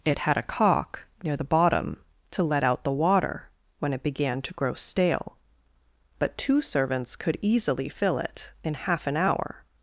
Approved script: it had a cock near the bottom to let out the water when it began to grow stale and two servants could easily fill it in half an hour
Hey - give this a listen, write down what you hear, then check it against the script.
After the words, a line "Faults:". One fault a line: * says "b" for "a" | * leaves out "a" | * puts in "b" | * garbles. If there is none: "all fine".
it had a cock near the bottom to let out the water when it began to grow stale but two servants could easily fill it in half an hour
Faults:
* says "but" for "and"